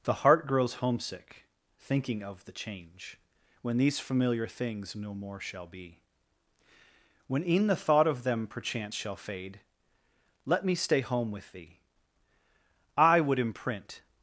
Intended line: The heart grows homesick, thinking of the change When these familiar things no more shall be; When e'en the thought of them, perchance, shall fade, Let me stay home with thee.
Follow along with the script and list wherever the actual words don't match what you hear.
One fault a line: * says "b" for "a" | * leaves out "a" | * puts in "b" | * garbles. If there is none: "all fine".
* puts in "I would imprint"